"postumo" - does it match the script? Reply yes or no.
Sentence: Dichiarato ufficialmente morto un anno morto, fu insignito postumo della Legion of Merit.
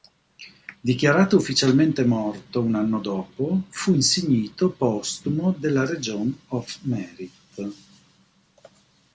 yes